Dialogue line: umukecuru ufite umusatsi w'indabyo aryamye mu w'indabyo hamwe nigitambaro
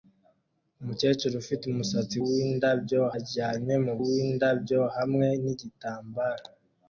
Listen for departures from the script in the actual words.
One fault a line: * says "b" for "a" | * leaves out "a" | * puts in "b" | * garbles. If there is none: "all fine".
all fine